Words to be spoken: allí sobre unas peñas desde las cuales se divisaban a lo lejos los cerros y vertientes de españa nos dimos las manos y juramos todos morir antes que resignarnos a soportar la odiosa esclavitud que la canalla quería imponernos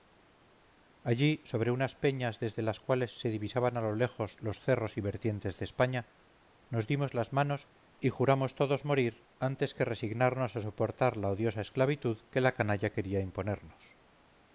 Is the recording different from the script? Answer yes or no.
no